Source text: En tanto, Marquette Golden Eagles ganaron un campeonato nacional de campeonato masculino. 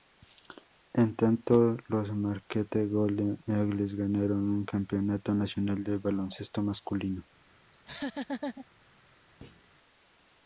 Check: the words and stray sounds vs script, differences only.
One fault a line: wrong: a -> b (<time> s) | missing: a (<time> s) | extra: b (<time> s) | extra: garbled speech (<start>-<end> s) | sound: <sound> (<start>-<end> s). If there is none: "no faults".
extra: los (1.9 s)
wrong: campeonato -> baloncesto (6.0 s)
sound: laugh (7.7-8.7 s)
sound: thud (9.4-9.7 s)